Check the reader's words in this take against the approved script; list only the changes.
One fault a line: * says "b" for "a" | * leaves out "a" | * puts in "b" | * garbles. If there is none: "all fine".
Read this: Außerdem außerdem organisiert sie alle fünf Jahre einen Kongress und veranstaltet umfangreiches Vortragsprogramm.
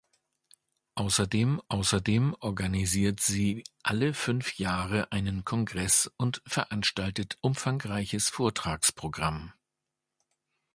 all fine